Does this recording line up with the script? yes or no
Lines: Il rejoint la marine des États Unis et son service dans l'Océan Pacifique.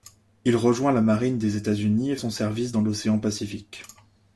yes